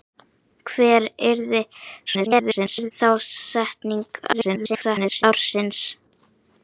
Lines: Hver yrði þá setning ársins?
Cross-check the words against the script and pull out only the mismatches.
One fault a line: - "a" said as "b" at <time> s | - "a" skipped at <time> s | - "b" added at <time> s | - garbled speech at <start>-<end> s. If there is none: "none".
- garbled speech at 2.1-2.9 s
- garbled speech at 4.3-5.2 s